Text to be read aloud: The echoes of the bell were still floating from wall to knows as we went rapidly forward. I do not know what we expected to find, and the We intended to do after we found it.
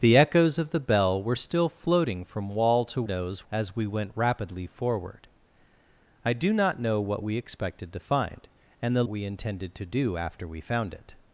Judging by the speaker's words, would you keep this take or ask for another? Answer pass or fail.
pass